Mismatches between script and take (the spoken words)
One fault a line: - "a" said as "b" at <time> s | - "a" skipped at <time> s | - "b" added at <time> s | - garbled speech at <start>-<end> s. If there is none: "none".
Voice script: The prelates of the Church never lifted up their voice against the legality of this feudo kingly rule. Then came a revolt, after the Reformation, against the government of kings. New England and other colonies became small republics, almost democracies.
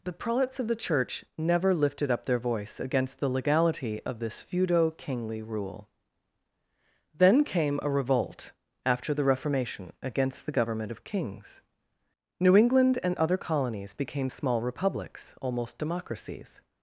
none